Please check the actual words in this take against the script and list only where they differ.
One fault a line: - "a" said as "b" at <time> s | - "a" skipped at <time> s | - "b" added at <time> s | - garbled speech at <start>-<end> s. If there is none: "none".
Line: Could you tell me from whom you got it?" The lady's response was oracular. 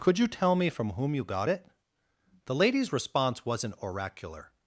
- "was" said as "wasn't" at 3.4 s